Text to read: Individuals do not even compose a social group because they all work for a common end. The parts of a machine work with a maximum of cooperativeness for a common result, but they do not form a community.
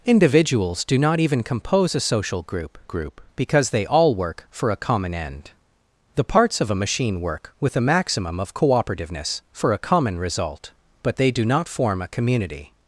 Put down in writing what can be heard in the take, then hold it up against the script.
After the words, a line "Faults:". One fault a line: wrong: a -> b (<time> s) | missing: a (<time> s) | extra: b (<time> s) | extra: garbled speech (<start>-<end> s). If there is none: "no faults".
Individuals do not even compose a social group group because they all work for a common end. The parts of a machine work with a maximum of cooperativeness for a common result, but they do not form a community.
Faults:
extra: group (2.8 s)